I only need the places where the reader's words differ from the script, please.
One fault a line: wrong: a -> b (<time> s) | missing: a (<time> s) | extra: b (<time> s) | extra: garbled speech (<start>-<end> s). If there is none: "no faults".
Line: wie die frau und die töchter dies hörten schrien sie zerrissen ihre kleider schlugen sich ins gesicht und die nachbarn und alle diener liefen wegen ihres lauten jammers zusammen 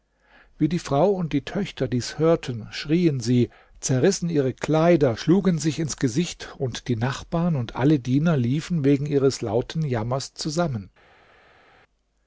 no faults